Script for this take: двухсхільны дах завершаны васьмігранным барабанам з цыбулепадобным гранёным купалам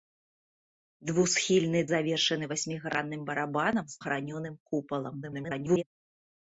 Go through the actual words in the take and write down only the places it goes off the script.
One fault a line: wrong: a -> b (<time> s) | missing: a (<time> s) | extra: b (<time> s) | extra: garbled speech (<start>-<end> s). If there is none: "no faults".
missing: дах (1.8 s)
missing: цыбулепадобным (4.0 s)
extra: garbled speech (5.2-5.8 s)